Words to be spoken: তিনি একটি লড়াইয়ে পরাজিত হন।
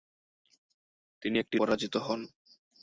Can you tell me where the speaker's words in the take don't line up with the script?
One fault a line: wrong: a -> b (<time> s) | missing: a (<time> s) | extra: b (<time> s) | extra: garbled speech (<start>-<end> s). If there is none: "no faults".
missing: লড়াইয়ে (1.6 s)